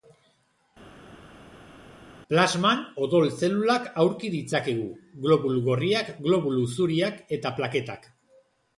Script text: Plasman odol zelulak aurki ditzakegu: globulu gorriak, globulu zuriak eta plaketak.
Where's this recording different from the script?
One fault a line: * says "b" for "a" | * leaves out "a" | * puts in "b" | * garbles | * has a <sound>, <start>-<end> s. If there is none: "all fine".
all fine